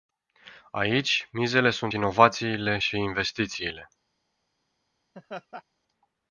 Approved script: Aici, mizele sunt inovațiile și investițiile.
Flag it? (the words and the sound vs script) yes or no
yes